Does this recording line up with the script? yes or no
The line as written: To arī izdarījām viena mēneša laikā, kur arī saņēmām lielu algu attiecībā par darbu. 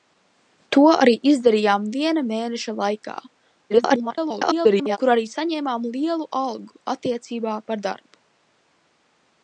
no